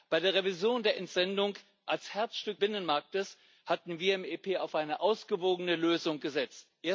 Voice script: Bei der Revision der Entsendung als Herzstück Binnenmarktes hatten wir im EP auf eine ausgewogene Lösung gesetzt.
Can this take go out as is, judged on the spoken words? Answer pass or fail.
pass